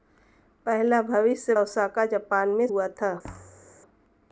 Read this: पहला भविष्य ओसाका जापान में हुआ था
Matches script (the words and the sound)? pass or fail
fail